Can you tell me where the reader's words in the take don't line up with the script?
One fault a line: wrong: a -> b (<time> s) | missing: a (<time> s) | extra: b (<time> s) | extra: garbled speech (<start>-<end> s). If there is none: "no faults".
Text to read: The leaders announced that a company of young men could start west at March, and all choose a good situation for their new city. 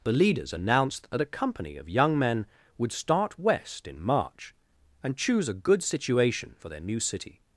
wrong: could -> would (2.8 s)
wrong: at -> in (3.9 s)
missing: all (5.2 s)